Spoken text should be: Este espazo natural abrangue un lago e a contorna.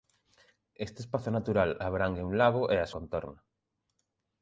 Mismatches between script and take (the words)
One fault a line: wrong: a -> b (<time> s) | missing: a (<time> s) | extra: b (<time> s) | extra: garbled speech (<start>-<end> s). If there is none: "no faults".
no faults